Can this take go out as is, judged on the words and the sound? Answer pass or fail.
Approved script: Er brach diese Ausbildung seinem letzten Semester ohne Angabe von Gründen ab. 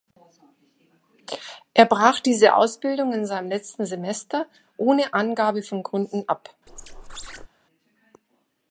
fail